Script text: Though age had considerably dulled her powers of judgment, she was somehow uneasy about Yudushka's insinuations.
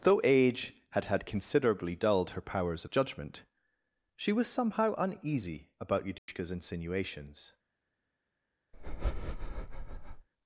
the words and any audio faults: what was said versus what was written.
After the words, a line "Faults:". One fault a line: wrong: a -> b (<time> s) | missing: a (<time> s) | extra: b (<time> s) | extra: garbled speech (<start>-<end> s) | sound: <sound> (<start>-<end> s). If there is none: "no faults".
Though age had had considerably dulled her powers of judgment, she was somehow uneasy about Yudushka's insinuations.
Faults:
extra: had (1.1 s)
sound: dropout (6.2-6.3 s)
sound: breath (8.7-10.3 s)